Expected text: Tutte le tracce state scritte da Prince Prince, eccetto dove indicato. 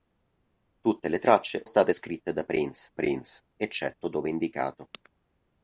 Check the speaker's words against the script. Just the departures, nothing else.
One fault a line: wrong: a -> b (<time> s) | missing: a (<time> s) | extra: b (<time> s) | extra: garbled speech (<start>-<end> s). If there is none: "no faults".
no faults